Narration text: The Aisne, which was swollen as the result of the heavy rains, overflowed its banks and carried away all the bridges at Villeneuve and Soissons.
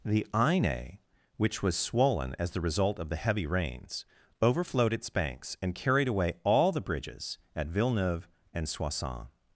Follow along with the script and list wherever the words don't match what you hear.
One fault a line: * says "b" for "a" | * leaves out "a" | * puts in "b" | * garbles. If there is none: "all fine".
all fine